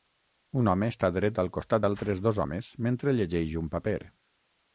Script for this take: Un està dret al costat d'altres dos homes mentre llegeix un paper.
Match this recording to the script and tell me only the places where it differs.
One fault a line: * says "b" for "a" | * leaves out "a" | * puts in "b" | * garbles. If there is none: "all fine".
* puts in "home"